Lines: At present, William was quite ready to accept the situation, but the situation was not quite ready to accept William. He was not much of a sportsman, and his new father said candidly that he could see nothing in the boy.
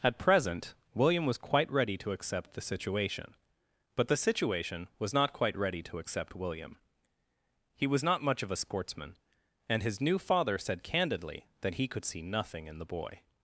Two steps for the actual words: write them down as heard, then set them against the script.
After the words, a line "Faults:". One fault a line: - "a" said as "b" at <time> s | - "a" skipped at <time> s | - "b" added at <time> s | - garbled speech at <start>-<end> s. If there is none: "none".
At present, William was quite ready to accept the situation, but the situation was not quite ready to accept William. He was not much of a sportsman, and his new father said candidly that he could see nothing in the boy.
Faults:
none